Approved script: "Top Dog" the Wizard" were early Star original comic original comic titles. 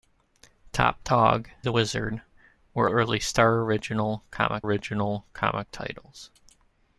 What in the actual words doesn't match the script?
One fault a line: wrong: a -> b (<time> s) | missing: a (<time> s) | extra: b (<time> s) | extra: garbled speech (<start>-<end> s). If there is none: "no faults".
no faults